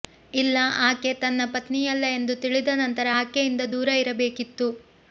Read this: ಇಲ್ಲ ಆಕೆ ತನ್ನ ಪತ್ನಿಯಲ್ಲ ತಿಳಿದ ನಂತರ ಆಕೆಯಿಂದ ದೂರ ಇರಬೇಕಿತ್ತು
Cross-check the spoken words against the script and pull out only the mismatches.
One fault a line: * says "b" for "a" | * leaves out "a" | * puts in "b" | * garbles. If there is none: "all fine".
* puts in "ಎಂದು"